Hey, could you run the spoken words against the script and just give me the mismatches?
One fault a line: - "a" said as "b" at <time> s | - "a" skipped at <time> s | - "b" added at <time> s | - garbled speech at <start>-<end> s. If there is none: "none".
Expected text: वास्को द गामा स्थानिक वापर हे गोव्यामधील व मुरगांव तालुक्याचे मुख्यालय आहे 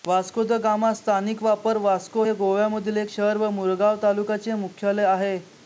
- "वास्को" added at 1.8 s
- "एक शहर" added at 3.0 s